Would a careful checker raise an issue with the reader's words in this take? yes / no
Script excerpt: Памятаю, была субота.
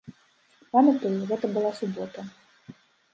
yes